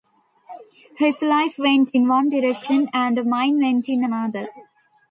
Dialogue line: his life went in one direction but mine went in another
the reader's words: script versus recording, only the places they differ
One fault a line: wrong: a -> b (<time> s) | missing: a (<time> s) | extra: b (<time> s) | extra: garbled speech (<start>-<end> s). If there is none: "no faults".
wrong: but -> and (2.9 s)